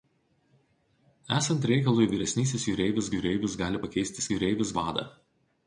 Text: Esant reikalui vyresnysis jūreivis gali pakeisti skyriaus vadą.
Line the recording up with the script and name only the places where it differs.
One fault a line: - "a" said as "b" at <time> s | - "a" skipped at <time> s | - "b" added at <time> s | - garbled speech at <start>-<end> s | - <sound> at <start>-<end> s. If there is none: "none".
- "jūreivis" added at 3.2 s
- "skyriaus" said as "jūreivis" at 4.3 s